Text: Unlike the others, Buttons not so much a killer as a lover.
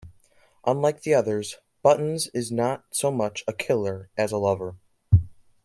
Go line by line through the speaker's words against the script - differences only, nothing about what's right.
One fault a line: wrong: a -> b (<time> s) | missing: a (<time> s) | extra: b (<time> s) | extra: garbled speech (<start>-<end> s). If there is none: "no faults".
extra: is (2.3 s)